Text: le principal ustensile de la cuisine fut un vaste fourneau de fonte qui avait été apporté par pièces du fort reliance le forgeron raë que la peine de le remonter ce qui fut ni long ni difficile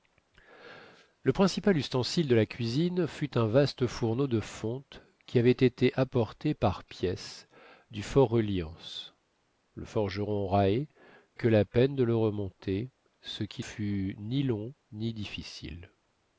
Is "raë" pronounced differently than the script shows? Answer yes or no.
no